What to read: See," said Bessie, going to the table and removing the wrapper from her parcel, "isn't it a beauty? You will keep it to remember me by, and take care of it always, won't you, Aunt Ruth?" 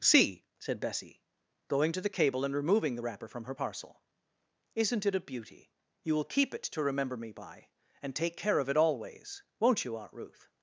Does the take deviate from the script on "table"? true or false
true